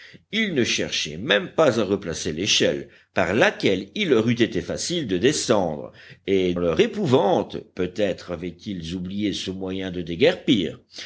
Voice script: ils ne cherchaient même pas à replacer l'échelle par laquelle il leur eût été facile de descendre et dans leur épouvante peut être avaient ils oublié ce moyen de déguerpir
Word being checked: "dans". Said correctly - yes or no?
no